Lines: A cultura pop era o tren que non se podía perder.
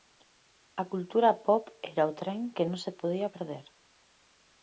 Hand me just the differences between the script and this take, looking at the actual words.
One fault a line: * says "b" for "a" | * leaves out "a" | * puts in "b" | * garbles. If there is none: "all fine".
all fine